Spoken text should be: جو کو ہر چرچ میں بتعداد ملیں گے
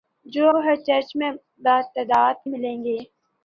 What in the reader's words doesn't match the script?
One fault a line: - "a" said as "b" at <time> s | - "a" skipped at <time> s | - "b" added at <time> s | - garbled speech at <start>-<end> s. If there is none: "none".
none